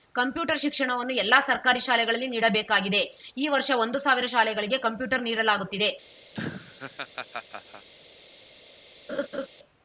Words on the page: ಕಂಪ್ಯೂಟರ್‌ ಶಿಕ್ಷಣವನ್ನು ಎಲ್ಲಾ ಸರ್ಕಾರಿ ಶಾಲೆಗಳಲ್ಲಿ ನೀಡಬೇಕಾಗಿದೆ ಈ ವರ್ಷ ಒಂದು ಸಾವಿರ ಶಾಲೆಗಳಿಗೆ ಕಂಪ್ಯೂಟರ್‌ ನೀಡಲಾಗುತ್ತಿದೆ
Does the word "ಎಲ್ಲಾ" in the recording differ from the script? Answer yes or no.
no